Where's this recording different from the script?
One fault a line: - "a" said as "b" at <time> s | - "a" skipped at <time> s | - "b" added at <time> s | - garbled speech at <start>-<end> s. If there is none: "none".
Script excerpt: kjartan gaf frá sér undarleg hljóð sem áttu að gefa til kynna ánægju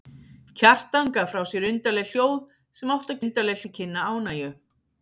- "gefa" said as "undarleg" at 3.2 s